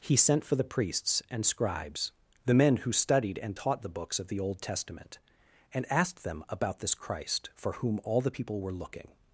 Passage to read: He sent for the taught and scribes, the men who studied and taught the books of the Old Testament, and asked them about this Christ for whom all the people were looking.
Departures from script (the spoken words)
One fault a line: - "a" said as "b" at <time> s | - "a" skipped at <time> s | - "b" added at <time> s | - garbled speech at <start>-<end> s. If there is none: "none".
- "taught" said as "priests" at 0.6 s